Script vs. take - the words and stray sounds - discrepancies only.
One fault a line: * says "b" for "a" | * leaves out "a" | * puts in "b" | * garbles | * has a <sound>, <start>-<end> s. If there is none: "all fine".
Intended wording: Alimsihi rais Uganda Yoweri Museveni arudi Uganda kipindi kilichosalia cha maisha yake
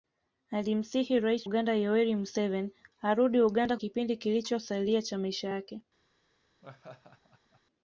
* has a laugh, 6.6-7.6 s